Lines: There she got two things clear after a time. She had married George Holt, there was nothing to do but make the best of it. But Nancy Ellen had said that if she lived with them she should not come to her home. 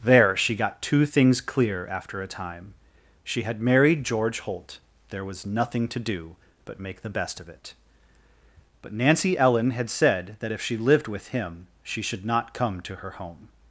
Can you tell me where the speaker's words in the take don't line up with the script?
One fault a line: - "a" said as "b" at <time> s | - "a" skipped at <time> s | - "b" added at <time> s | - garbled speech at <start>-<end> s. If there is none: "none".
- "them" said as "him" at 11.3 s